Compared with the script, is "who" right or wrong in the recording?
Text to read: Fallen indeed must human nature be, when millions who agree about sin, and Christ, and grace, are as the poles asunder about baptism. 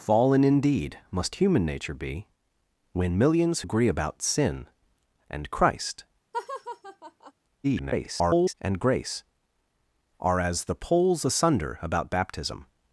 wrong